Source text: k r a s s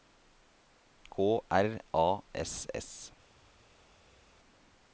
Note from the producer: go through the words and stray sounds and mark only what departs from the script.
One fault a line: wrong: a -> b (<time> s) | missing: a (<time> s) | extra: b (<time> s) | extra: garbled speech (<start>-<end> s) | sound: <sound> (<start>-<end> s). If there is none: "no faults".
no faults